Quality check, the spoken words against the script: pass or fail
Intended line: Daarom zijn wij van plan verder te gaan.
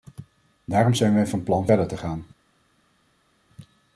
pass